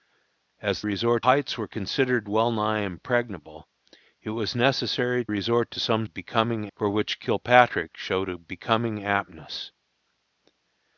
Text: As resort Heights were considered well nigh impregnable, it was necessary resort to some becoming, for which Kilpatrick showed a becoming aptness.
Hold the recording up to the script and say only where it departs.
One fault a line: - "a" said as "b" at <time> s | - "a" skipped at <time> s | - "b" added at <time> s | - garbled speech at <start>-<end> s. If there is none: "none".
none